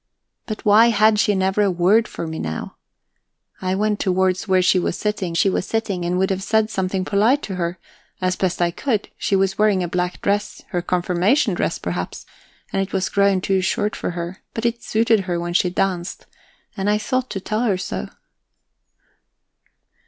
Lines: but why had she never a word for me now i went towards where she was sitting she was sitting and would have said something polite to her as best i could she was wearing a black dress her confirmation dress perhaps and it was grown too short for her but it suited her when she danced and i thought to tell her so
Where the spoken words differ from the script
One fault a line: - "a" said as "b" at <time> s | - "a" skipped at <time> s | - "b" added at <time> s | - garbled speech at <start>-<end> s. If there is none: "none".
none